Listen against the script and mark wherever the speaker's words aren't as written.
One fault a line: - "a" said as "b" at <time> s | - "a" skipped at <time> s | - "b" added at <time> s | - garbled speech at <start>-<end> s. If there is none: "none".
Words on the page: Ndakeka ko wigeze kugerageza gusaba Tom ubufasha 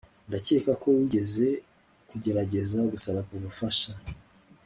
- "Tom" skipped at 3.2 s